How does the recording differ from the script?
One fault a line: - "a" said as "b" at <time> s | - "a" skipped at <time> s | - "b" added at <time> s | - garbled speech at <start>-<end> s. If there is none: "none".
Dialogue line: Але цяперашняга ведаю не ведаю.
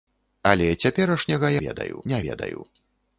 none